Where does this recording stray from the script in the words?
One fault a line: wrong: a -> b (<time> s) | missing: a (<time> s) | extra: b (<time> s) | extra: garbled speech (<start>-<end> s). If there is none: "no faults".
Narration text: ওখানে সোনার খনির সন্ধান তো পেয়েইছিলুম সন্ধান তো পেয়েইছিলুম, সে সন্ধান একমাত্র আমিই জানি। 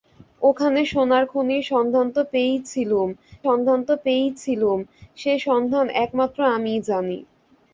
no faults